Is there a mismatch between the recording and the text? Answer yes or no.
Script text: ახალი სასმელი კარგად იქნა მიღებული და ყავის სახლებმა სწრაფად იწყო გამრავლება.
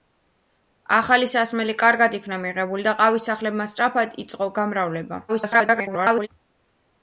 yes